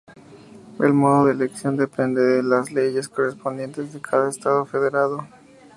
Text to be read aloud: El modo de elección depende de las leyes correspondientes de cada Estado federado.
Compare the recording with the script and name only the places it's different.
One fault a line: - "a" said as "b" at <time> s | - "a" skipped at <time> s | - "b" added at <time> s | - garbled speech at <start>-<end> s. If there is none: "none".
none